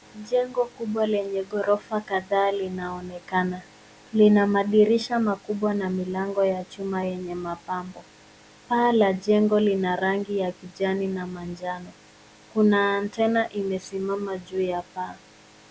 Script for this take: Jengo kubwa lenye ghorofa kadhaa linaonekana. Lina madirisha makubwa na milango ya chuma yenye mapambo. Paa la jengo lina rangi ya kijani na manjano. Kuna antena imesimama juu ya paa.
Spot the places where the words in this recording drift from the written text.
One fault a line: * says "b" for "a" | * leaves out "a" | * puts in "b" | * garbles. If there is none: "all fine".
all fine